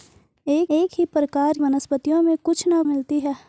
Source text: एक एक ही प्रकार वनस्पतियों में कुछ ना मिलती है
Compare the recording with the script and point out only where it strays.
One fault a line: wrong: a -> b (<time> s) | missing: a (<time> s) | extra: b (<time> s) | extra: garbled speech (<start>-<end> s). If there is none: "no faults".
no faults